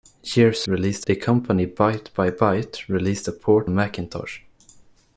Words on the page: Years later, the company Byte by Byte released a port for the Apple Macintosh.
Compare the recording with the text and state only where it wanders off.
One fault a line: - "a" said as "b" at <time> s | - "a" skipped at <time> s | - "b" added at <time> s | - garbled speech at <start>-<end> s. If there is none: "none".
- "later" said as "released" at 0.7 s
- "for the Apple" skipped at 3.7 s